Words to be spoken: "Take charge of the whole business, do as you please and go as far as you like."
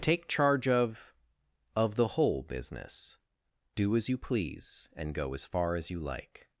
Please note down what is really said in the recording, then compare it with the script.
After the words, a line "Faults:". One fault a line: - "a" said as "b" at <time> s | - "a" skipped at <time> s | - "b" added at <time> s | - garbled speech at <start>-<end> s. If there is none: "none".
"Take charge of of the whole business, do as you please and go as far as you like."
Faults:
- "of" added at 1.8 s